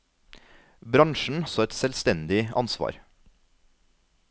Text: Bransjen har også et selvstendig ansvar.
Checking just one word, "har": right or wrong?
wrong